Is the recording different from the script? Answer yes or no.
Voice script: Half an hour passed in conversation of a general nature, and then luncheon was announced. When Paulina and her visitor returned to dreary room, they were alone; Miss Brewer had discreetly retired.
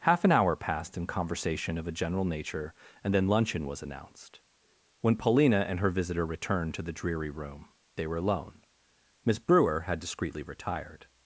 yes